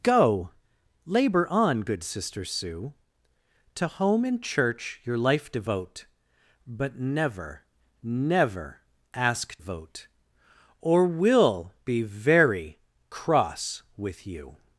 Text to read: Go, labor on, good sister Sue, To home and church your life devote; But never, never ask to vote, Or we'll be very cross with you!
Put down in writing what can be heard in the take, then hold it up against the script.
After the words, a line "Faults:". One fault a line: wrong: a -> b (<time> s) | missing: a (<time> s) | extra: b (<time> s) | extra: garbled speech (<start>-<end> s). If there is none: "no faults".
Go, labor on, good sister Sue, To home and church your life devote; But never, never ask vote, Or we'll be very cross with you!
Faults:
missing: to (9.6 s)